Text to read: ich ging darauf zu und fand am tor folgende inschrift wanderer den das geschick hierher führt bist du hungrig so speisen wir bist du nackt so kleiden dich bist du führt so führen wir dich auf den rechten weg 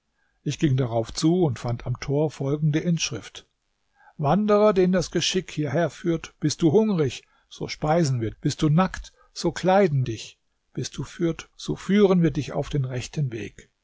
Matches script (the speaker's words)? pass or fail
pass